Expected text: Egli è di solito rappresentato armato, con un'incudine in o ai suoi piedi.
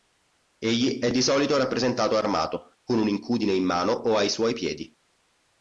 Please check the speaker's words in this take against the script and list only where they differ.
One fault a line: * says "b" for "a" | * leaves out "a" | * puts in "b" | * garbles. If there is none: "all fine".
* puts in "mano"